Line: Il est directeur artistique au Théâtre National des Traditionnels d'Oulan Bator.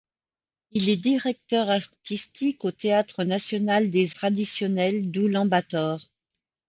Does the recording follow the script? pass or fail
pass